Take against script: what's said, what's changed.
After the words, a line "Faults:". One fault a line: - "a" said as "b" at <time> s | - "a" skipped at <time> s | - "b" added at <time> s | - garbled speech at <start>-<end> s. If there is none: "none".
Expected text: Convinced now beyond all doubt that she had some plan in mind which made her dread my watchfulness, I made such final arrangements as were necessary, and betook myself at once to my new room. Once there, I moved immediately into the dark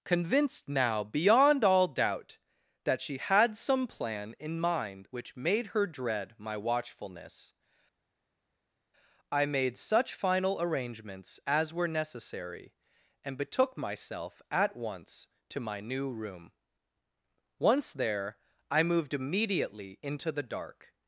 Convinced now beyond all doubt that she had some plan in mind which made her dread my watchfulness, I made such final arrangements as were necessary, and betook myself at once to my new room. Once there, I moved immediately into the dark
Faults:
none